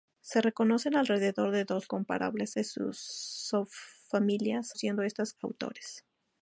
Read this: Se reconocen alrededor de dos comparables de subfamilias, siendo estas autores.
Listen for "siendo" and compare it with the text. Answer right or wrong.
right